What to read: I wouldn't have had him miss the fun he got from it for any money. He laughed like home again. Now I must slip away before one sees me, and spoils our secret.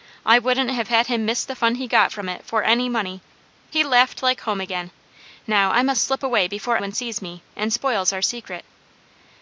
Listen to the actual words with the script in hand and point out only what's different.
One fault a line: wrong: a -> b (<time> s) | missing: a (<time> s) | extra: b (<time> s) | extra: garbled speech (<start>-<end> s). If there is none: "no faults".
no faults